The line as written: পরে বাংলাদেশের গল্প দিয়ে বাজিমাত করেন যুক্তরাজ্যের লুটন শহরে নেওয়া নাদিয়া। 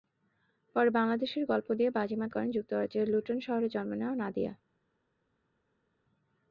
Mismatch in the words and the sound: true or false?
true